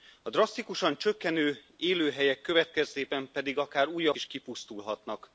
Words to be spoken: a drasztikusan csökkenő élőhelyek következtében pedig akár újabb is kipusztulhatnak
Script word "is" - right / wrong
right